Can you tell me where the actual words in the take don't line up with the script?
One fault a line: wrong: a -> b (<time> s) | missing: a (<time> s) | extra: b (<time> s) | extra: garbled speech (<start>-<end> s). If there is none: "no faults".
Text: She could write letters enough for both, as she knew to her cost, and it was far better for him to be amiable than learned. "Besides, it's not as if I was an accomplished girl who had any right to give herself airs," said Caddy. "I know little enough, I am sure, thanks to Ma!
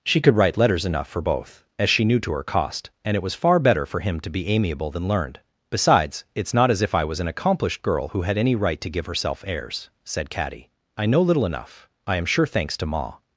no faults